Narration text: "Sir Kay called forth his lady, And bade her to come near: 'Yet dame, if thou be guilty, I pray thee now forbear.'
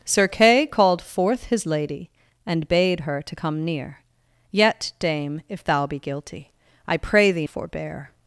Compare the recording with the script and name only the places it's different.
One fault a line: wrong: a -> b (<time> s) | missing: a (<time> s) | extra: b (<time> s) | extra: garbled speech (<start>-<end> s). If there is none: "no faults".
missing: now (7.5 s)